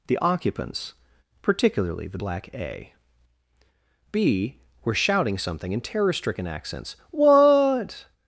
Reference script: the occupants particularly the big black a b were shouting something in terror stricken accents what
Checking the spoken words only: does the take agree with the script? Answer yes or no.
no